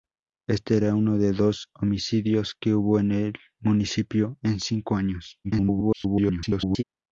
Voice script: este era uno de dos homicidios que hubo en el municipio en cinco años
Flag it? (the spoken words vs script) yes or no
yes